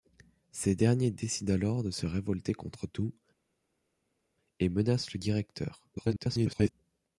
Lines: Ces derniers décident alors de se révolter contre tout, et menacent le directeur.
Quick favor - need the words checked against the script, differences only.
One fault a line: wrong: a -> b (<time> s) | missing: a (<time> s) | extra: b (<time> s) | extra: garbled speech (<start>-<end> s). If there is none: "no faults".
extra: garbled speech (6.0-6.7 s)